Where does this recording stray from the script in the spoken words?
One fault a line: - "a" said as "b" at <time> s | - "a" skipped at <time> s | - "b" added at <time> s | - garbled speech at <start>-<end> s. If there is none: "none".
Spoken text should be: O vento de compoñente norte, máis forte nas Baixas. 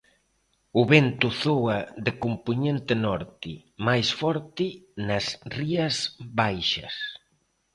- "zoa" added at 1.4 s
- "Rías" added at 5.6 s